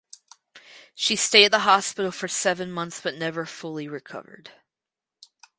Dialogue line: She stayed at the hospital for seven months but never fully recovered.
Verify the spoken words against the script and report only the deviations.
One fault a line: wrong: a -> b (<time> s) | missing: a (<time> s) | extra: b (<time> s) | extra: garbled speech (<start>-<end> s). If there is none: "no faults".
no faults